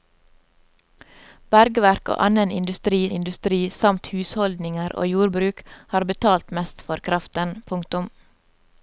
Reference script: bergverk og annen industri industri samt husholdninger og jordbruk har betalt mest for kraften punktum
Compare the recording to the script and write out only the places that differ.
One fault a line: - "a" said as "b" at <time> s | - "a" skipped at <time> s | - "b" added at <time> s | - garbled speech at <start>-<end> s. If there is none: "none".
none